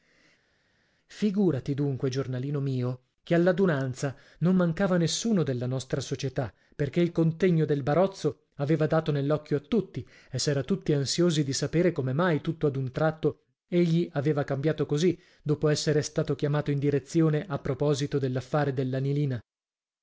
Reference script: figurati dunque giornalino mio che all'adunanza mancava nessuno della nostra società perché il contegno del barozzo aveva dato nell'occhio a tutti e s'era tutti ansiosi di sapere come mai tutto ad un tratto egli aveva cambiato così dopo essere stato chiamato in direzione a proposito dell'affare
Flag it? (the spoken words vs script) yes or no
yes